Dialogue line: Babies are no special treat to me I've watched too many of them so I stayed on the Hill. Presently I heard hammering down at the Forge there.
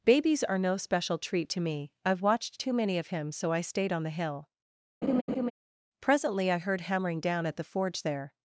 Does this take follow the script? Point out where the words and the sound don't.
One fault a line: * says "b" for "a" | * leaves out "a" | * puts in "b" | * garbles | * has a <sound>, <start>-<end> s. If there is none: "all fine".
* says "him" for "them"
* has a laugh, 5.0-5.5 s